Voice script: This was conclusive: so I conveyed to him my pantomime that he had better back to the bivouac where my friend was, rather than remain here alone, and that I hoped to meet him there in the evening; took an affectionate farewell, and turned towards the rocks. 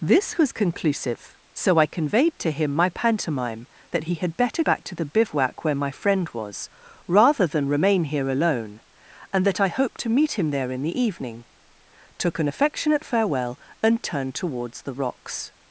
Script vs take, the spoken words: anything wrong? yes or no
no